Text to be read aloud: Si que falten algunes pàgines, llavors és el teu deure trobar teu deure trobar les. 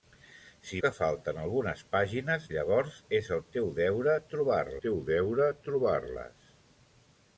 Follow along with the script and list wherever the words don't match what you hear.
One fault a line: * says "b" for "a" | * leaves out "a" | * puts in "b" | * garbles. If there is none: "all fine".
all fine